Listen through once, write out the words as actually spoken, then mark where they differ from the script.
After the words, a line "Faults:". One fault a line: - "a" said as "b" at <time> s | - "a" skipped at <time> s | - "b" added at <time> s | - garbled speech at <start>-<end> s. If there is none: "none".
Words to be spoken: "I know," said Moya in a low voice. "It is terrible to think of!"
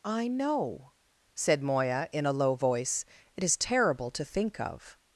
"I know," said Moya in a low voice. "It is terrible to think of!"
Faults:
none